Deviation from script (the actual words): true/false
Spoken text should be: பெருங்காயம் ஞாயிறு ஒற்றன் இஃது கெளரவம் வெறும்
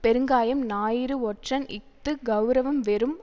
false